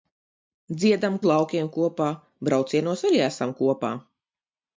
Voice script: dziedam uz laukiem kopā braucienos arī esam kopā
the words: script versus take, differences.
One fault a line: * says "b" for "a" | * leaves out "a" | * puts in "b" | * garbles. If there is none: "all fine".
all fine